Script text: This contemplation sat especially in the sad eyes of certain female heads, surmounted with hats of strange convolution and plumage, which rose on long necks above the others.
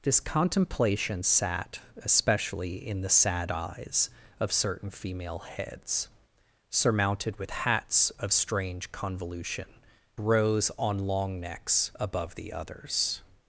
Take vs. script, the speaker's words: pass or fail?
fail